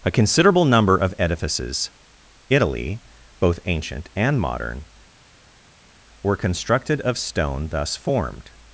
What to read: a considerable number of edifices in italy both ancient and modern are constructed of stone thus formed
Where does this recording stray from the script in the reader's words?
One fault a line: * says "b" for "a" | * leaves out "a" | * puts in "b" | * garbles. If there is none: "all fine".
* leaves out "in"
* says "were" for "are"